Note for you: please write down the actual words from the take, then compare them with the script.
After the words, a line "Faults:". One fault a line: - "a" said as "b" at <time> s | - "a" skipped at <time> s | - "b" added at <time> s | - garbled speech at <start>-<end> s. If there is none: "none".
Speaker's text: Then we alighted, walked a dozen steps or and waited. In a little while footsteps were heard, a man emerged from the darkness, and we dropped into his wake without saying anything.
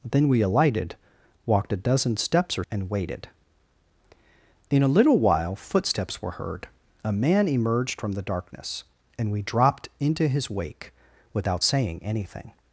Then we alighted, walked a dozen steps or and waited. In a little while footsteps were heard, a man emerged from the darkness, and we dropped into his wake without saying anything.
Faults:
none